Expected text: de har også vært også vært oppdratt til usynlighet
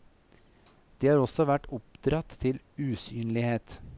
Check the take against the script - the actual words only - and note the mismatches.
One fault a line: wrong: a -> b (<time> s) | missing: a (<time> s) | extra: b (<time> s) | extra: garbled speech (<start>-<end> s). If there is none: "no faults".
missing: også vært (1.7 s)